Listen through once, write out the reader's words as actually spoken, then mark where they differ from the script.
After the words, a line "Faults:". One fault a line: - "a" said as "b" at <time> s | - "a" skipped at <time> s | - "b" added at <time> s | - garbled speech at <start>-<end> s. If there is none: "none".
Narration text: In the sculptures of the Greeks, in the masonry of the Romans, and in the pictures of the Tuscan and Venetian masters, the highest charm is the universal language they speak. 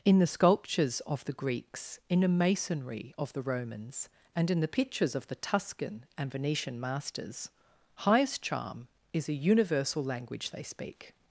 In the sculptures of the Greeks, in the masonry of the Romans, and in the pictures of the Tuscan and Venetian masters, highest charm is a universal language they speak.
Faults:
- "the" skipped at 7.5 s
- "the" said as "a" at 9.3 s